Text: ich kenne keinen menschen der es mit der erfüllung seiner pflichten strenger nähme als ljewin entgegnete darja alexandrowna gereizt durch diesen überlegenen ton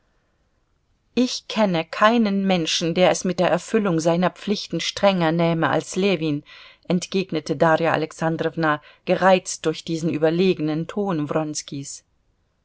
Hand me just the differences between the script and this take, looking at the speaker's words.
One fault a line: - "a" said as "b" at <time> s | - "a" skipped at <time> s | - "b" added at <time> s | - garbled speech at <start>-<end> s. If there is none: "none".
none